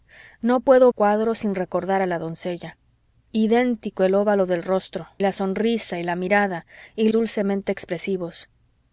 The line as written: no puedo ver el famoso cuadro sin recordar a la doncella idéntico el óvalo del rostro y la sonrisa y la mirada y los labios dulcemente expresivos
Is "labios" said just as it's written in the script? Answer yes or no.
no